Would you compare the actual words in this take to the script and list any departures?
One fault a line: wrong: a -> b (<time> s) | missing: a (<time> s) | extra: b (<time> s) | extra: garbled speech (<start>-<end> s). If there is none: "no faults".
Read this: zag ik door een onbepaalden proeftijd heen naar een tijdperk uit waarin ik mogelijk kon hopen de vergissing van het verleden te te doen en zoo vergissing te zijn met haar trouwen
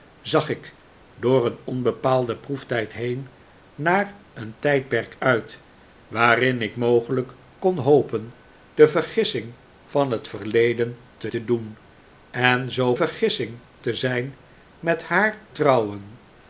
no faults